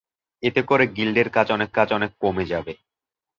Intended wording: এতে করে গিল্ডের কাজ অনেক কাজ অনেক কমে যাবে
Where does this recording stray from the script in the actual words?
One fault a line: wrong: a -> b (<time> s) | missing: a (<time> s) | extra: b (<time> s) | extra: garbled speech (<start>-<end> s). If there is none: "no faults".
no faults